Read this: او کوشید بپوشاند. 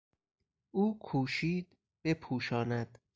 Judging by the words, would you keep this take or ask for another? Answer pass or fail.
pass